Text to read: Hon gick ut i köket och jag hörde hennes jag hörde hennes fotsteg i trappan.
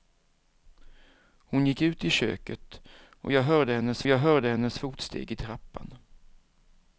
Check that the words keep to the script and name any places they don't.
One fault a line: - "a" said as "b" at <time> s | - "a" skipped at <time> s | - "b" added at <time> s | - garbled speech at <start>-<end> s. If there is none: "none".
none